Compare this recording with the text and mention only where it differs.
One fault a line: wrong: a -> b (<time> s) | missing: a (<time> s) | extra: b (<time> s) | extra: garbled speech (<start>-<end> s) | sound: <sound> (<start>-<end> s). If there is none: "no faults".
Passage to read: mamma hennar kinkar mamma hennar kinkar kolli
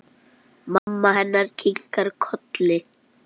sound: dropout (0.8-0.9 s)
missing: mamma hennar kinkar (2.1 s)